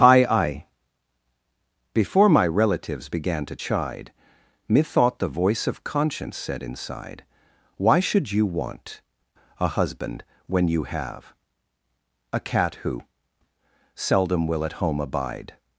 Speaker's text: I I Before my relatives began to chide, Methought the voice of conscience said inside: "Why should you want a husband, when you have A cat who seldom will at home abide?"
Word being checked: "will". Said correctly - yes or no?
yes